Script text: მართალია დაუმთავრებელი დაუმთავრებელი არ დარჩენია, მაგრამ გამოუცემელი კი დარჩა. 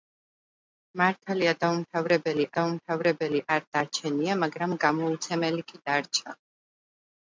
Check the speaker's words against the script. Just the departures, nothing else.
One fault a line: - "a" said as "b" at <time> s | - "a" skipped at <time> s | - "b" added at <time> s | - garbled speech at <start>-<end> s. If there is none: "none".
none